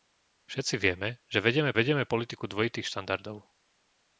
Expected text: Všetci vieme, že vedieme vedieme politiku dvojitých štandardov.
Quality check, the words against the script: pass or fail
pass